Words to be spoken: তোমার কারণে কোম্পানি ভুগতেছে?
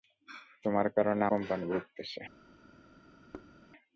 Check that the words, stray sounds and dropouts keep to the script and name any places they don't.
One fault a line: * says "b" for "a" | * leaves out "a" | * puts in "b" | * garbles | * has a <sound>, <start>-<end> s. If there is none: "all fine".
* has a thud, 3.3-3.5 s